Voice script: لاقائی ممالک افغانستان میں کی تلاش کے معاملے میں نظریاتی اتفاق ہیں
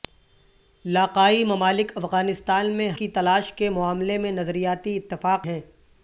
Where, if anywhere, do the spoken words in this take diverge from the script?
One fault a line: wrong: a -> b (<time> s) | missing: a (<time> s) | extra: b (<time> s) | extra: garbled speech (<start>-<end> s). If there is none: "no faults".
no faults